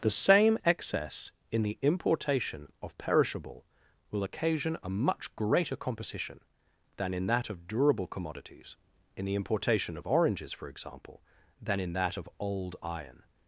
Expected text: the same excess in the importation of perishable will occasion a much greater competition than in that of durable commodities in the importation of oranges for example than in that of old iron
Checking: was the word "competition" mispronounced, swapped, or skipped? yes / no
yes